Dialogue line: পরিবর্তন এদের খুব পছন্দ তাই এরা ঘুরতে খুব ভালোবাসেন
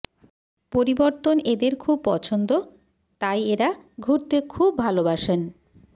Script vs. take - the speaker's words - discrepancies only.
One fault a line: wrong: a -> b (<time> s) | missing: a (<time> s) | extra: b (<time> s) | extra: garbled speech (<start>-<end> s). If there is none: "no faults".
no faults